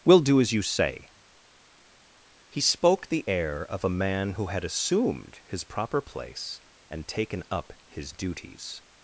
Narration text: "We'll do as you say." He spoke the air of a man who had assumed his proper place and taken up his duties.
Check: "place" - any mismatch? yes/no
no